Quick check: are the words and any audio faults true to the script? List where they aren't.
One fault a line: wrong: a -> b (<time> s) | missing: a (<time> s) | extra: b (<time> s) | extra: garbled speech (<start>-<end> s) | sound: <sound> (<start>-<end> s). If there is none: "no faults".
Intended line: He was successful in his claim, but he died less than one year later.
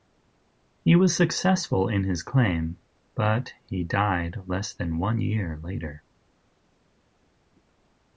no faults